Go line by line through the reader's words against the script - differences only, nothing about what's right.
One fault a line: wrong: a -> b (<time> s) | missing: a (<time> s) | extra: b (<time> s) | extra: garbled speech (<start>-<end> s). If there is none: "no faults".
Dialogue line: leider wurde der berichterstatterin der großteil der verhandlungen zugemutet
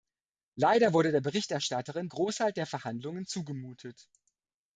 missing: der (2.1 s)